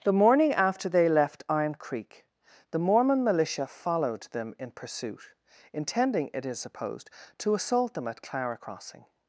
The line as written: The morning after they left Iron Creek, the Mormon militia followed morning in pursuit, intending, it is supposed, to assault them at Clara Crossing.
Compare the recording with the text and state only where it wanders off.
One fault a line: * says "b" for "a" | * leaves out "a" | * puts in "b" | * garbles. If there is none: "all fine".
* says "them" for "morning"